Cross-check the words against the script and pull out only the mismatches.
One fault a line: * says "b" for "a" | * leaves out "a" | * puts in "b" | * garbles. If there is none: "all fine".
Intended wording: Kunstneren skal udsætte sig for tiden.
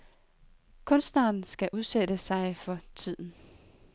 all fine